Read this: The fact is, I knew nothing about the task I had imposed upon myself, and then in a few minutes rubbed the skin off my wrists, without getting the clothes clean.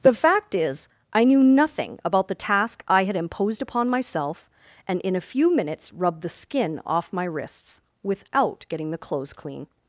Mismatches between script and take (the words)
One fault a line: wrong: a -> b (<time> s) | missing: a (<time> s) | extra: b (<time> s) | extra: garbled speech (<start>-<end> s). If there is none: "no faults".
missing: then (5.0 s)